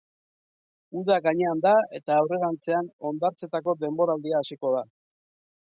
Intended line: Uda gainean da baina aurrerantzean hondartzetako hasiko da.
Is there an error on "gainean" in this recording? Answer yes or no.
no